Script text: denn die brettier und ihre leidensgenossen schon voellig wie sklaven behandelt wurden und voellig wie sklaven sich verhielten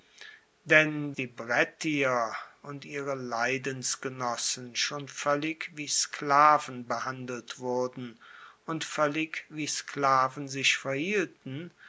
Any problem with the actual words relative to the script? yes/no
no